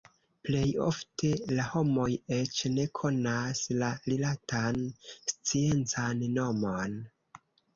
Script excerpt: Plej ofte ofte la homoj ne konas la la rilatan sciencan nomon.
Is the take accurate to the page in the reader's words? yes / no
no